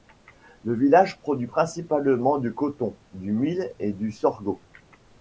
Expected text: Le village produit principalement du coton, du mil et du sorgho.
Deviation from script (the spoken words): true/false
false